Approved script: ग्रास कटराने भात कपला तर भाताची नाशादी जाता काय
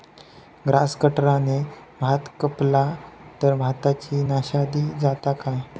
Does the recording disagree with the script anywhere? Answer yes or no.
no